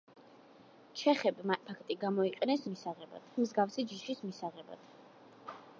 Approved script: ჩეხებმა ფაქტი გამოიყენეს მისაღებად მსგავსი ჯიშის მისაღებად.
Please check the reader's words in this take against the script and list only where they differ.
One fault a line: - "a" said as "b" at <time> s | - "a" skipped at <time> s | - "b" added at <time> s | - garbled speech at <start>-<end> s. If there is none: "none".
none